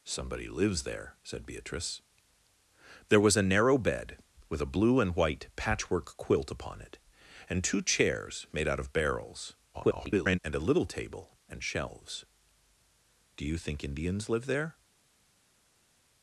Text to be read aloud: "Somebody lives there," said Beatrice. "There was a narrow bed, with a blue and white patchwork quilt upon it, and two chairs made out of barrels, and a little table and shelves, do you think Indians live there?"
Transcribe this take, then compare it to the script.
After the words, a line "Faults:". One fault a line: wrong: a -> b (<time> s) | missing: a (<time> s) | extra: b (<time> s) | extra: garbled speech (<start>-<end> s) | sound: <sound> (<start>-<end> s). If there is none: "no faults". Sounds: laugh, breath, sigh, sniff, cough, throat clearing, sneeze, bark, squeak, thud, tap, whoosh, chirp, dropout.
"Somebody lives there," said Beatrice. "There was a narrow bed, with a blue and white patchwork quilt upon it, and two chairs made out of barrels, [garbled] and a little table and shelves, do you think Indians live there?"
Faults:
extra: garbled speech (9.7-10.4 s)